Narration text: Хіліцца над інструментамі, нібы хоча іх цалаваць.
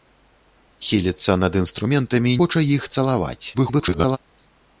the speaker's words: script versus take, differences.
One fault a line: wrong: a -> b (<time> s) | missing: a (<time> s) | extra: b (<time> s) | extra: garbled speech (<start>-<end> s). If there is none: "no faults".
missing: нібы (2.4 s)
extra: garbled speech (3.5-4.2 s)